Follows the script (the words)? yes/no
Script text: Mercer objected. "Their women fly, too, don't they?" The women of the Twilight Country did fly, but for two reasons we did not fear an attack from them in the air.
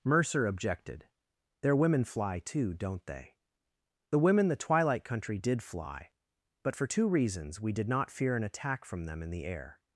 no